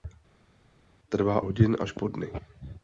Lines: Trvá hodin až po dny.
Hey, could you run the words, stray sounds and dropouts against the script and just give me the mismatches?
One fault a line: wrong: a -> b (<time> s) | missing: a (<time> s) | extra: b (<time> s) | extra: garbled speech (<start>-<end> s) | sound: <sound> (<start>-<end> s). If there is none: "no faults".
no faults